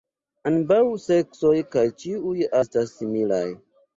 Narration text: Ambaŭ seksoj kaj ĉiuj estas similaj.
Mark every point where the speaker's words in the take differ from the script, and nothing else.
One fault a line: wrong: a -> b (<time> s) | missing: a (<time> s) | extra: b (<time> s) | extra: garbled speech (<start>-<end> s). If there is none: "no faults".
no faults